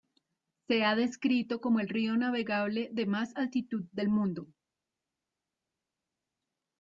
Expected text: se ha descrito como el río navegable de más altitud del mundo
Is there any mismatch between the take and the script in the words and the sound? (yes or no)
no